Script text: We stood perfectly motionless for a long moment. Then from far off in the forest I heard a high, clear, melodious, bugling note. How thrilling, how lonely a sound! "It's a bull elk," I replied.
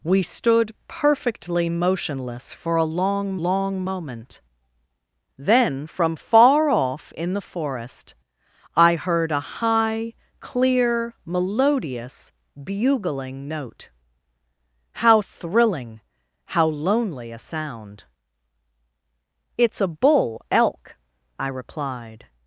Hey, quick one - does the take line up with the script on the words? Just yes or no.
no